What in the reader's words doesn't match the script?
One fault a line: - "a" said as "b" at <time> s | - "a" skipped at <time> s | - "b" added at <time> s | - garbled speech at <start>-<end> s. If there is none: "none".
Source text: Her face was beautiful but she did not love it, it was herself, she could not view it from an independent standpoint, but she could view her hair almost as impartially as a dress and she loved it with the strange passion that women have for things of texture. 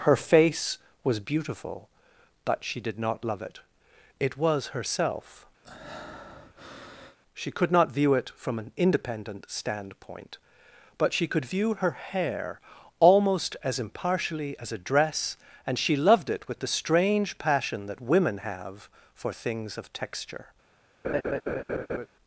none